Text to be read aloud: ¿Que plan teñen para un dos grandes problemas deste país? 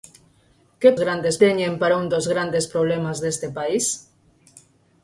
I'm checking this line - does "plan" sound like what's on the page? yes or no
no